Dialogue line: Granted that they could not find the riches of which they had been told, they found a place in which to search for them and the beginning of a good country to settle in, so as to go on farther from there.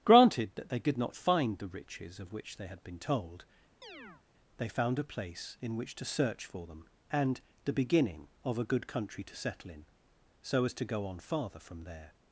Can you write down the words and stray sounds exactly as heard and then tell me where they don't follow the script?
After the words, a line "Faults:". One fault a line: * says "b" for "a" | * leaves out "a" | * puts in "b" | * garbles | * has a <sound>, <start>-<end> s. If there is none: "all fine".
Granted that they could not find the riches of which they had been told, they found a place in which to search for them and the beginning of a good country to settle in, so as to go on farther from there.
Faults:
* has a chirp, 3.8-4.2 s